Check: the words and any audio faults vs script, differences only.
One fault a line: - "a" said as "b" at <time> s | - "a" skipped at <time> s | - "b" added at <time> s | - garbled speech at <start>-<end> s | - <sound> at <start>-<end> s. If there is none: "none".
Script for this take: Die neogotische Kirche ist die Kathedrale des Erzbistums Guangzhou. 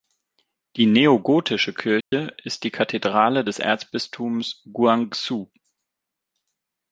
- dropout at 2.0-2.1 s